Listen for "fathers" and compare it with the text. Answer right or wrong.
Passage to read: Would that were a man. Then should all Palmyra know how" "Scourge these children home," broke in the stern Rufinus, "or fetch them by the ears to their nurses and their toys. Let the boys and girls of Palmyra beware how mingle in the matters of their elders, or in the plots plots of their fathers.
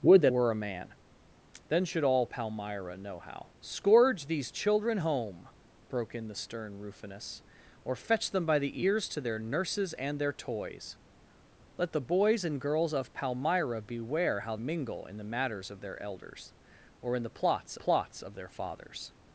right